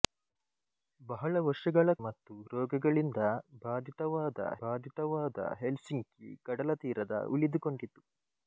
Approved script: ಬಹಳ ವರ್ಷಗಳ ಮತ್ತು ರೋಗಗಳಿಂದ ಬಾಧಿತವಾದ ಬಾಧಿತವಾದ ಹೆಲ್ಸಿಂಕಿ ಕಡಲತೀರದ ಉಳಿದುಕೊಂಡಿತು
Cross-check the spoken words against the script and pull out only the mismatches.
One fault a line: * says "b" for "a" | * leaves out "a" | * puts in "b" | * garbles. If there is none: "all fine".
all fine